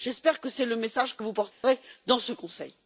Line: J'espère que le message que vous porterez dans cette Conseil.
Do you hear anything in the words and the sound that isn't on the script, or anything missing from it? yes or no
yes